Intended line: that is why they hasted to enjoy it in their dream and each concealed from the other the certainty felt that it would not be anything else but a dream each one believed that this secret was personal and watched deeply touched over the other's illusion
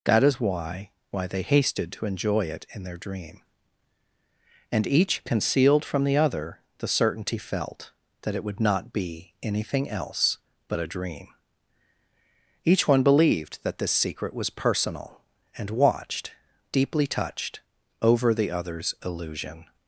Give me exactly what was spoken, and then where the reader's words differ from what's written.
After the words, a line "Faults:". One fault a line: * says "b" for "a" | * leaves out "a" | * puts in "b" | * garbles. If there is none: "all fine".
that is why why they hasted to enjoy it in their dream and each concealed from the other the certainty felt that it would not be anything else but a dream each one believed that this secret was personal and watched deeply touched over the other's illusion
Faults:
* puts in "why"